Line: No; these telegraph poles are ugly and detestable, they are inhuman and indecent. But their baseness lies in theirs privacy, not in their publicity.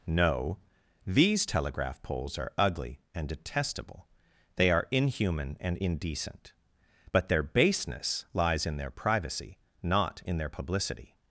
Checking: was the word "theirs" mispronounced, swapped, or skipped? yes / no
yes